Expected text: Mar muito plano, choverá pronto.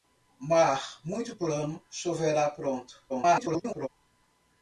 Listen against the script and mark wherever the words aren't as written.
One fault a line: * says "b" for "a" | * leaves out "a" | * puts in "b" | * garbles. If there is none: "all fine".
* garbles